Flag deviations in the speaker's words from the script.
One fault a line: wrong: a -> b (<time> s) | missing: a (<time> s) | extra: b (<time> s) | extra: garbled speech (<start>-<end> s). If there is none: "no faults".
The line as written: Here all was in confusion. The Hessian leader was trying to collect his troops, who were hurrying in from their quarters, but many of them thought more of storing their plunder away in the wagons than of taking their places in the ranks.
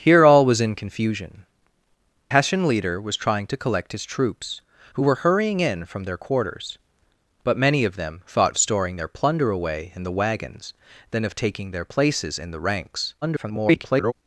missing: The (1.4 s)
missing: more (8.5 s)
extra: garbled speech (13.2-14.1 s)